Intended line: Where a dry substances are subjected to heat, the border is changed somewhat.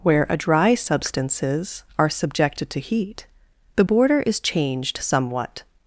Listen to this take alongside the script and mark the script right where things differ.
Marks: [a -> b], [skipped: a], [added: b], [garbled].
Where a dry substances are subjected to heat, the border is changed somewhat.